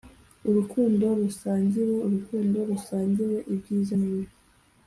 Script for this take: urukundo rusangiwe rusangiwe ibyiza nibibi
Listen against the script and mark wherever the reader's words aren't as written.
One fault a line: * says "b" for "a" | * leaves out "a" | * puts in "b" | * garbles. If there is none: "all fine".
* puts in "urukundo"